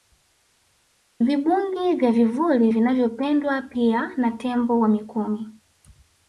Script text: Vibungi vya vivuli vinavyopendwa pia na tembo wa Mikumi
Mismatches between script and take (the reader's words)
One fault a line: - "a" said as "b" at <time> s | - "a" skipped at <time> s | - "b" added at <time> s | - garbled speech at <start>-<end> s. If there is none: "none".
none